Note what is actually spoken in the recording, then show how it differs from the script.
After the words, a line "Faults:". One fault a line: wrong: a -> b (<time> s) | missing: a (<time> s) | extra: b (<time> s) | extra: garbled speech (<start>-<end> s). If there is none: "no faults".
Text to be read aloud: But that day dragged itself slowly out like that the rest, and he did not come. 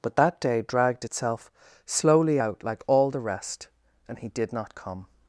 But that day dragged itself slowly out like all the rest, and he did not come.
Faults:
wrong: that -> all (2.9 s)